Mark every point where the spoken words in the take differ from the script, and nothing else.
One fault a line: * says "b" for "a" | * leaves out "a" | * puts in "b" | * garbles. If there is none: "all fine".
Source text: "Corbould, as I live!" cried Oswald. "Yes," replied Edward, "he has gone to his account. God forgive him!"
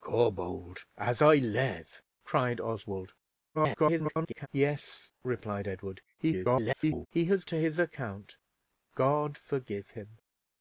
* garbles
* garbles
* leaves out "gone"